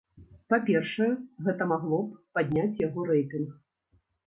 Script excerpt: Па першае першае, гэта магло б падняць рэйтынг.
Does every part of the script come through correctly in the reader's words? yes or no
no